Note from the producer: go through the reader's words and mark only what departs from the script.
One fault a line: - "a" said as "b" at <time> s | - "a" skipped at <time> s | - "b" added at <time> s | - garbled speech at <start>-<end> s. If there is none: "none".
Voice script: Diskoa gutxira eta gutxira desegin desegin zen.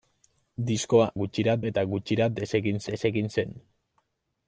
none